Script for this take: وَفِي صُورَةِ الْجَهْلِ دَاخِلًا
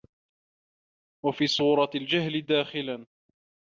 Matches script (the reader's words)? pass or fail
pass